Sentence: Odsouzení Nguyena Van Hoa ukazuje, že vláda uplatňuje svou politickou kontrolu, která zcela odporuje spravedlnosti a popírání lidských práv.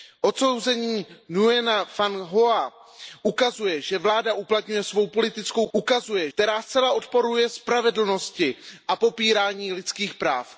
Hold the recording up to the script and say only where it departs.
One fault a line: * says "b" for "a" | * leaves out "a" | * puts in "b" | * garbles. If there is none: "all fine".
* says "ukazuje" for "kontrolu"